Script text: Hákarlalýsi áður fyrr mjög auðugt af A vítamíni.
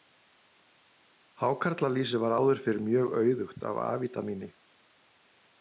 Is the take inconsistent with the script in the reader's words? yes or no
yes